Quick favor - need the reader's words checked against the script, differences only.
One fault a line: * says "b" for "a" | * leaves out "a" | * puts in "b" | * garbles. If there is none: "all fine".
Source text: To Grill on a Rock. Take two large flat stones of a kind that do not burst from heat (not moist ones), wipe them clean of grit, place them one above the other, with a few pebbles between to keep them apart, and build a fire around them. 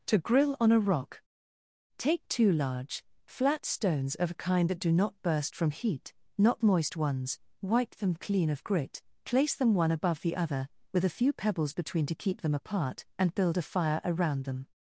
all fine